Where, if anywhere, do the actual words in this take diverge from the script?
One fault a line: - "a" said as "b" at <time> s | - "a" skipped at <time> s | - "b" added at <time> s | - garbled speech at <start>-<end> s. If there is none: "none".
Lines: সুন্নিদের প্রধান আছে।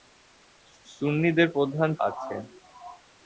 none